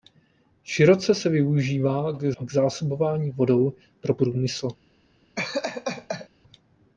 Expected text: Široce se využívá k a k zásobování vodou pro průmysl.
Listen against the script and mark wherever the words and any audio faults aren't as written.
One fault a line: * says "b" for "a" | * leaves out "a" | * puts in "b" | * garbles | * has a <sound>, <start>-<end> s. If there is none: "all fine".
* has a laugh, 5.4-6.3 s